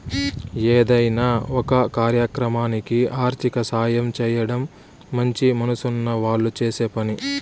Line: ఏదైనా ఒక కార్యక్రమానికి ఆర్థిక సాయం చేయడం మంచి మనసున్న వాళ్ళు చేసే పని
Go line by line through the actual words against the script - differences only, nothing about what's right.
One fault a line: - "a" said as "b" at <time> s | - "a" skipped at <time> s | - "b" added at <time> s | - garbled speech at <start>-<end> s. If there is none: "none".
none